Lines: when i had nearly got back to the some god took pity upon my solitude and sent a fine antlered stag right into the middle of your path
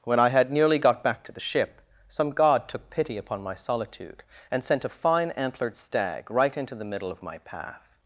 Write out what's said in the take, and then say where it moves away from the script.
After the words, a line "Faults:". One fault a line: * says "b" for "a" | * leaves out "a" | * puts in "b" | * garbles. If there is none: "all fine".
when i had nearly got back to the ship some god took pity upon my solitude and sent a fine antlered stag right into the middle of my path
Faults:
* puts in "ship"
* says "my" for "your"